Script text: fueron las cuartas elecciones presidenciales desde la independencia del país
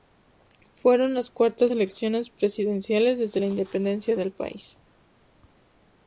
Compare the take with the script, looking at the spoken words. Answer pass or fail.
pass